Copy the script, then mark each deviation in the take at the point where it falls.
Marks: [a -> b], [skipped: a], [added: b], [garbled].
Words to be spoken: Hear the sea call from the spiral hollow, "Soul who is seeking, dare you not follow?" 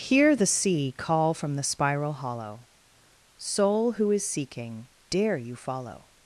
Hear the sea call from the spiral hollow, "Soul who is seeking, dare you [skipped: not] follow?"